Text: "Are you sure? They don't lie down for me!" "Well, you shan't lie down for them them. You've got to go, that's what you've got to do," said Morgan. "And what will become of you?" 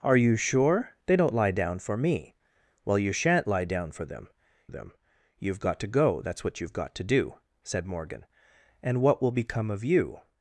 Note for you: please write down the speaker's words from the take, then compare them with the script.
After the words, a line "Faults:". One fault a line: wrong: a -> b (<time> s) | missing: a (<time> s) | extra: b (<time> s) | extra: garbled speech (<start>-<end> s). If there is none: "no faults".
"Are you sure? They don't lie down for me!" "Well, you shan't lie down for them them. You've got to go, that's what you've got to do," said Morgan. "And what will become of you?"
Faults:
no faults